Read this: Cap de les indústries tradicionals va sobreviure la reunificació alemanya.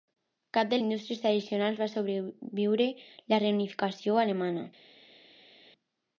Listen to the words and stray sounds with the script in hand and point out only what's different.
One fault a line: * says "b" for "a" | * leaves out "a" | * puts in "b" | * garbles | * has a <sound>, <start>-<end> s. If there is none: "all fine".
* leaves out "les"